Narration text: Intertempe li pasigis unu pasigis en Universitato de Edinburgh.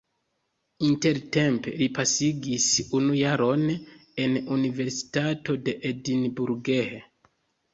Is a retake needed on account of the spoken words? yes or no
yes